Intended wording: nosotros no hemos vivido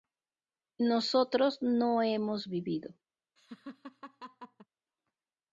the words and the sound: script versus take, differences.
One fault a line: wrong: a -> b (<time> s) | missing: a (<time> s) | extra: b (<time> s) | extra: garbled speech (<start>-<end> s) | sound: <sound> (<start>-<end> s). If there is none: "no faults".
sound: laugh (3.4-4.7 s)